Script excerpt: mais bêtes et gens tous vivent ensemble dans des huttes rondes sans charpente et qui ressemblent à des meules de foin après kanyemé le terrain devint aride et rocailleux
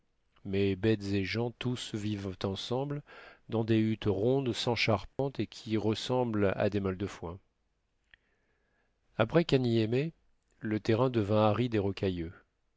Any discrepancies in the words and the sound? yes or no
yes